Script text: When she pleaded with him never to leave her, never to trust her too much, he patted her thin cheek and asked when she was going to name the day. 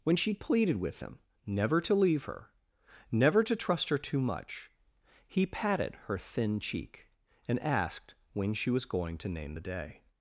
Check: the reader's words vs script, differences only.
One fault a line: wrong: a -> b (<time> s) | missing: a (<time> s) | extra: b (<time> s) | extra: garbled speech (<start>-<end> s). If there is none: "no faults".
no faults